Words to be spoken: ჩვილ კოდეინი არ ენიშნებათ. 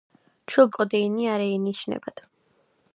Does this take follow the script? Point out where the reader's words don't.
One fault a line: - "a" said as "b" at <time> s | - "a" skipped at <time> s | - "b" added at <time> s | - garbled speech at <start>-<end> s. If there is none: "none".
none